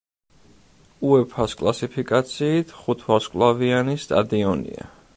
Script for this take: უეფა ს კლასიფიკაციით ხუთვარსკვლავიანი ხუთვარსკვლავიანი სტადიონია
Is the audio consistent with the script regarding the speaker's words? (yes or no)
no